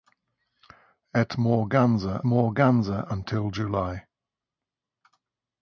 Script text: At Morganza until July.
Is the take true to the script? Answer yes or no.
no